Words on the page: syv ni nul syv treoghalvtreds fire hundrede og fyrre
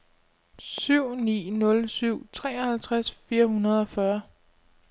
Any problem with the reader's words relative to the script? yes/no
no